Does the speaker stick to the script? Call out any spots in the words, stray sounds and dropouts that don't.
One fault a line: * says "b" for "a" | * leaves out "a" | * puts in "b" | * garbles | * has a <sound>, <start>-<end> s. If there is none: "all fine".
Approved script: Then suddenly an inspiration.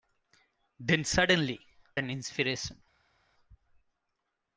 all fine